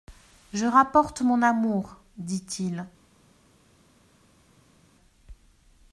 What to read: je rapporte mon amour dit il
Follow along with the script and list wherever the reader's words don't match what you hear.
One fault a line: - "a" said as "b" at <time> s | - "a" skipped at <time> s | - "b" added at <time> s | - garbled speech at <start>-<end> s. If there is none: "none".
none